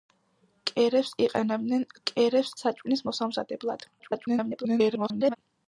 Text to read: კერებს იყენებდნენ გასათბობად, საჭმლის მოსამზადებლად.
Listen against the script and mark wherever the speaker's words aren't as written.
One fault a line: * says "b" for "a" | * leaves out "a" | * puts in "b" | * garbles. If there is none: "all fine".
* says "კერებს" for "გასათბობად"
* garbles